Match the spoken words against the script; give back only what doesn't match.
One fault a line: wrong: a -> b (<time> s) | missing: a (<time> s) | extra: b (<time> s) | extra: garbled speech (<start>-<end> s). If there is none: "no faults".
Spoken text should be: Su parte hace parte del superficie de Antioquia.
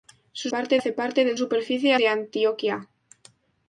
no faults